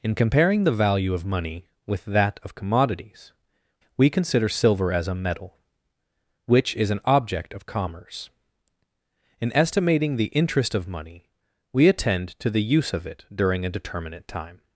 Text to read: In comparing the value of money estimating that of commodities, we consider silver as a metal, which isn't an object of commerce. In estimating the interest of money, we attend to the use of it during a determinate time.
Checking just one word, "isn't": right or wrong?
wrong